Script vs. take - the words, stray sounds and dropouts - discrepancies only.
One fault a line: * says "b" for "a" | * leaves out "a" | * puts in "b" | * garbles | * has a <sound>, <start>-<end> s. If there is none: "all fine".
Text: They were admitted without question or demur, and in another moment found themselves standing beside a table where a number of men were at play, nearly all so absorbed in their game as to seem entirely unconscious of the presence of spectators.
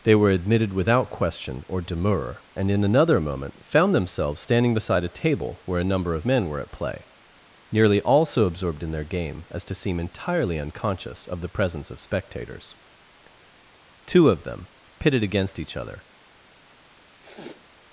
* puts in "Two of them pitted against each other"
* has a sniff, 17.2-17.7 s